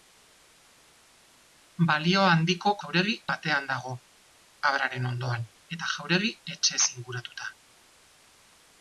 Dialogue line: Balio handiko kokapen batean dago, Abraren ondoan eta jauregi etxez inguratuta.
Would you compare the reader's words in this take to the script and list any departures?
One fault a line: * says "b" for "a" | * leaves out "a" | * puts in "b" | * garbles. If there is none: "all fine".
* says "jauregi" for "kokapen"